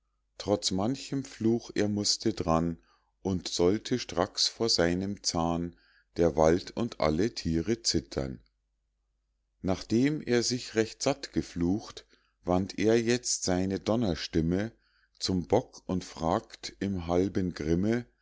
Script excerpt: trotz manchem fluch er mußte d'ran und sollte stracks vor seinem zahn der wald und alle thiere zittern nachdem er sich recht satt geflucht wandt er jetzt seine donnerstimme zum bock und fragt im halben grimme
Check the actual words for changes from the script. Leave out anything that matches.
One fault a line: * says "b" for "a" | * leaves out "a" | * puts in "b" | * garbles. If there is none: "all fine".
all fine